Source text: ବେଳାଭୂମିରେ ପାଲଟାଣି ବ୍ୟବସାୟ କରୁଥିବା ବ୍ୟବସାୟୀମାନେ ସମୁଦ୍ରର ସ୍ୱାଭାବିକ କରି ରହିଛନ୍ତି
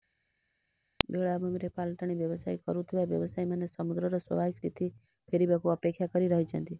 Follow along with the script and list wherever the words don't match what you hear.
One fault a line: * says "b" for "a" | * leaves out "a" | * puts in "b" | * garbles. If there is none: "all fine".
* puts in "ସ୍ଥିତି ଫେରିବାକୁ ଅପେକ୍ଷା"